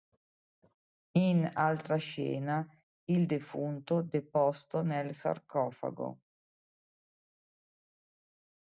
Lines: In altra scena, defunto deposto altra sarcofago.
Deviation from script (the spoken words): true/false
true